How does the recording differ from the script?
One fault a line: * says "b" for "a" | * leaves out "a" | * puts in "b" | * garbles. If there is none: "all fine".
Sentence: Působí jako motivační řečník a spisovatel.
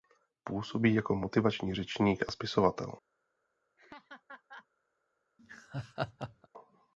all fine